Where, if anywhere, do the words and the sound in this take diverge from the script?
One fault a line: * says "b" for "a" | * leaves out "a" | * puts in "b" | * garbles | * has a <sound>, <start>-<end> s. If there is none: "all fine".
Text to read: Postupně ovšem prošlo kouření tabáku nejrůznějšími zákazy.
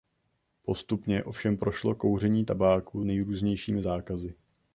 all fine